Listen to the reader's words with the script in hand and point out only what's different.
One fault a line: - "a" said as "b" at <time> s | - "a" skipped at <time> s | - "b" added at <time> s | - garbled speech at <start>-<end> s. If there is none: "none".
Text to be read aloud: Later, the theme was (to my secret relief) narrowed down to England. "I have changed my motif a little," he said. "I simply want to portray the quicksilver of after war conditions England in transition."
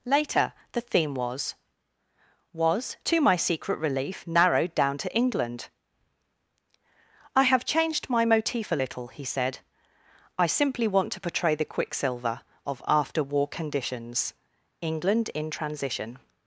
- "was" added at 2.5 s